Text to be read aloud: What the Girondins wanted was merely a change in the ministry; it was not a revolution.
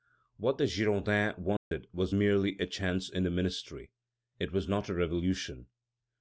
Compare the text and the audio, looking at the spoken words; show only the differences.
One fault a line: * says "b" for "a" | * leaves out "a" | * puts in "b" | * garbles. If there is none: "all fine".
all fine